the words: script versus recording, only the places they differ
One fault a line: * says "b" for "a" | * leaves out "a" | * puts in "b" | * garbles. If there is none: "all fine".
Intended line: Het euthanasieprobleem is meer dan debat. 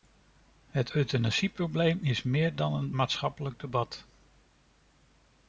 * puts in "een maatschappelijk"